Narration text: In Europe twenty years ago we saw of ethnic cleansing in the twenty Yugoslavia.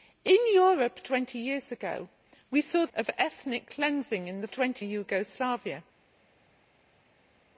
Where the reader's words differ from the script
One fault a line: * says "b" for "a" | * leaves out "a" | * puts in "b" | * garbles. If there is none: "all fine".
all fine